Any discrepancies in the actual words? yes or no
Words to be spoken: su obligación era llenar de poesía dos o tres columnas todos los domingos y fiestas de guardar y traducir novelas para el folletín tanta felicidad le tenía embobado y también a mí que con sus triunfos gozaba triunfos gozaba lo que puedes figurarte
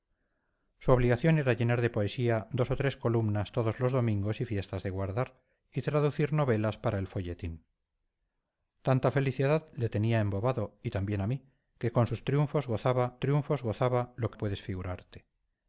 no